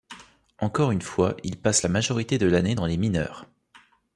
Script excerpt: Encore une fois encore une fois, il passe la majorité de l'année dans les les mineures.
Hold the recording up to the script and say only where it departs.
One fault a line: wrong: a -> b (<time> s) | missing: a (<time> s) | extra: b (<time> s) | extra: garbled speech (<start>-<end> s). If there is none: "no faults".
missing: encore une fois (1.4 s)
missing: les (3.0 s)